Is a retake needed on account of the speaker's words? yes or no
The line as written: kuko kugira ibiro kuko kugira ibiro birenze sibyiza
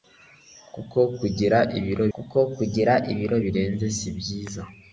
no